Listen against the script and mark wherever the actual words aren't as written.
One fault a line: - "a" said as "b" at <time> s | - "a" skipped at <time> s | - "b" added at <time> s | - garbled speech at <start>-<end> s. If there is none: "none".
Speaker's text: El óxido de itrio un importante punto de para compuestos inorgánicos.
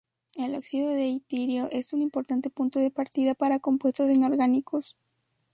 - "es" added at 1.7 s
- "partida" added at 2.9 s